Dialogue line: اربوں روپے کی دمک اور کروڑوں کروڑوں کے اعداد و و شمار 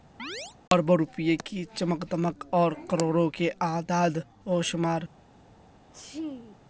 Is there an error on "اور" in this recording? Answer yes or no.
no